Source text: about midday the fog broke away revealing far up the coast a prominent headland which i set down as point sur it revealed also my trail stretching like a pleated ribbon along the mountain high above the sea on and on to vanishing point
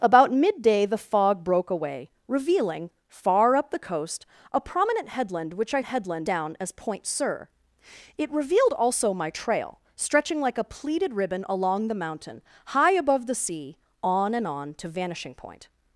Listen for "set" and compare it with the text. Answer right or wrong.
wrong